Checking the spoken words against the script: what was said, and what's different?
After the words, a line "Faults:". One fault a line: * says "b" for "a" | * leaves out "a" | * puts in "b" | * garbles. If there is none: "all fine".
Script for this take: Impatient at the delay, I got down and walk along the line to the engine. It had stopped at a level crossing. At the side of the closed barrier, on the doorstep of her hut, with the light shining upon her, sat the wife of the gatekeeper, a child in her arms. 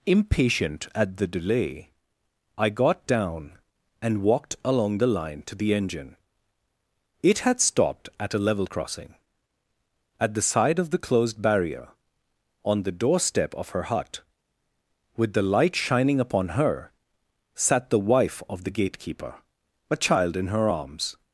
Impatient at the delay, I got down and walked along the line to the engine. It had stopped at a level crossing. At the side of the closed barrier, on the doorstep of her hut, with the light shining upon her, sat the wife of the gatekeeper, a child in her arms.
Faults:
* says "walked" for "walk"